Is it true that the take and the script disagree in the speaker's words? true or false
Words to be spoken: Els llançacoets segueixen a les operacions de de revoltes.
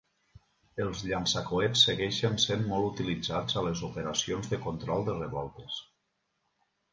true